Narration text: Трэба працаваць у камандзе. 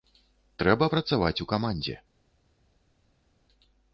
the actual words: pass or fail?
pass